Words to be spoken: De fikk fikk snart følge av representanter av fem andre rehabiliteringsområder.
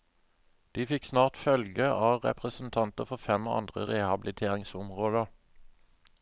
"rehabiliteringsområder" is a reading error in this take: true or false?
false